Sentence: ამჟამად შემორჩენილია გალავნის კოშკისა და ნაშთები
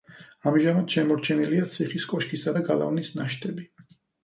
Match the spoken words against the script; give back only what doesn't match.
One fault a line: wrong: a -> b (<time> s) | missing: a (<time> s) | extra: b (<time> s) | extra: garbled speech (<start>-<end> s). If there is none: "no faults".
wrong: გალავნის -> ციხის (1.8 s)
extra: გალავნის (2.7 s)